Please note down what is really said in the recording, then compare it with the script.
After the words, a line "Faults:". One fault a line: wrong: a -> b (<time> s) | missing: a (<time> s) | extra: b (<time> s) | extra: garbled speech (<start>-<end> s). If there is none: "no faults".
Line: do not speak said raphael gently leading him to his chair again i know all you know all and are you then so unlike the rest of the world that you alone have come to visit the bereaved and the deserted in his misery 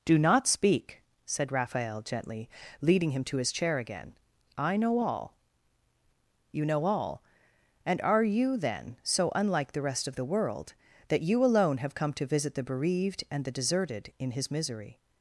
do not speak said raphael gently leading him to his chair again i know all you know all and are you then so unlike the rest of the world that you alone have come to visit the bereaved and the deserted in his misery
Faults:
no faults